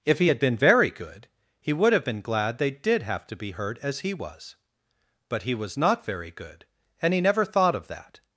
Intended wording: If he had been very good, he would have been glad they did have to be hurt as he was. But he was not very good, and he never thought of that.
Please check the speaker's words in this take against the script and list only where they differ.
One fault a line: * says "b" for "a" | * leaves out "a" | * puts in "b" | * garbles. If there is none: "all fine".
all fine